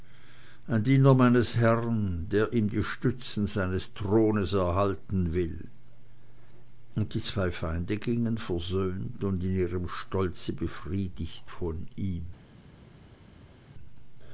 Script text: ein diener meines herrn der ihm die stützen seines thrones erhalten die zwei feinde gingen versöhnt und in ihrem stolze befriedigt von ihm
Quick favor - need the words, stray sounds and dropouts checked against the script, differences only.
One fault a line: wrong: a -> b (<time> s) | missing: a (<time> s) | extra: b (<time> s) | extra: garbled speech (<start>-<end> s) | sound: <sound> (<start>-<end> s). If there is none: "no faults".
extra: will und (5.3 s)